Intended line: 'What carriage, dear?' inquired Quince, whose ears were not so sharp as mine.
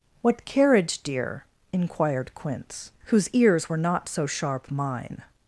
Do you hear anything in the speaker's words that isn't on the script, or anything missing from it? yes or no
yes